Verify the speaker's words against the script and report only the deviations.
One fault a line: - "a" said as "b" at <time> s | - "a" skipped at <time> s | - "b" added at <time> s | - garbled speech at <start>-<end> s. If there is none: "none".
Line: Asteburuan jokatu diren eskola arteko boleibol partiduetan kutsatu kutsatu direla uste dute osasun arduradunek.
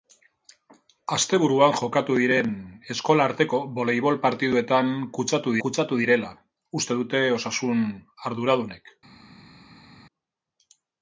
none